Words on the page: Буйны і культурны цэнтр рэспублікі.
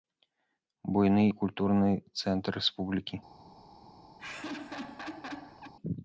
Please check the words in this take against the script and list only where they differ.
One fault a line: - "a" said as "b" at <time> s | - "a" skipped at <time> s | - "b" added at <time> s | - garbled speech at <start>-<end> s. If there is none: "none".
none